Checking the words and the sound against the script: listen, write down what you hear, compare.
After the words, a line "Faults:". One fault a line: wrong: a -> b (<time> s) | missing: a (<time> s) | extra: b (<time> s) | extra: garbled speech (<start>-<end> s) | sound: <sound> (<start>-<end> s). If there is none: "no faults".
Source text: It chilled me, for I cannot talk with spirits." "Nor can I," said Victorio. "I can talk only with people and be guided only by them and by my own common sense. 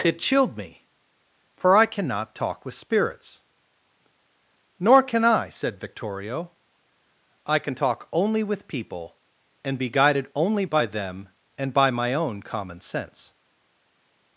It chilled me, for I cannot talk with spirits." "Nor can I," said Victorio. "I can talk only with people and be guided only by them and by my own common sense.
Faults:
no faults